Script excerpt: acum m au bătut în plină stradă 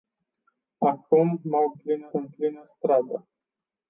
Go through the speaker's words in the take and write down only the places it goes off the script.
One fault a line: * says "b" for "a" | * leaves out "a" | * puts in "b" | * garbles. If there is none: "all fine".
* says "plină" for "bătut"